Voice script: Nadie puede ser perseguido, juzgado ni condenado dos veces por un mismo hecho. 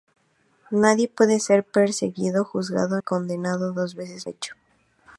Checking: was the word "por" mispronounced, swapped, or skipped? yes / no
yes